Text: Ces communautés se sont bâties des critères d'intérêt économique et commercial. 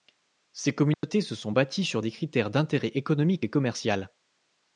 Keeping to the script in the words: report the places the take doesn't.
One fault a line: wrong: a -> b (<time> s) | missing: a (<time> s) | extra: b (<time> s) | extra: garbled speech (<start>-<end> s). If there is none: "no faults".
extra: sur (1.8 s)